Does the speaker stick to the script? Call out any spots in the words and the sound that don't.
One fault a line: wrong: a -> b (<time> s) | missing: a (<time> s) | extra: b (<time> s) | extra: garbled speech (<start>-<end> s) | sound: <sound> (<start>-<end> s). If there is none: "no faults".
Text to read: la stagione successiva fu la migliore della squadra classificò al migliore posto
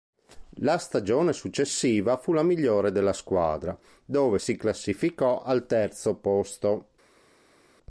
extra: dove si (4.0 s)
wrong: migliore -> terzo (5.6 s)